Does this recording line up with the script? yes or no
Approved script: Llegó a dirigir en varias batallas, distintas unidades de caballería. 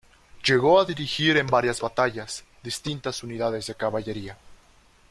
yes